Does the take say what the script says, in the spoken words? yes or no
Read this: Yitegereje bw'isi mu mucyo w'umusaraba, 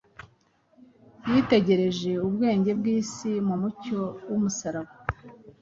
no